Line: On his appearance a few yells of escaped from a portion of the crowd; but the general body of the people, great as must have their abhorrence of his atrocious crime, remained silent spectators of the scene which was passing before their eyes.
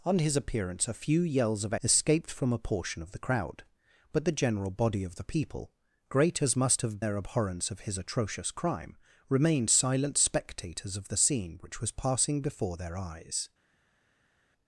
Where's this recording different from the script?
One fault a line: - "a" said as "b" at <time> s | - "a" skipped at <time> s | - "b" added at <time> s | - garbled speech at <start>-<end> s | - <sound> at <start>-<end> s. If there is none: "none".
none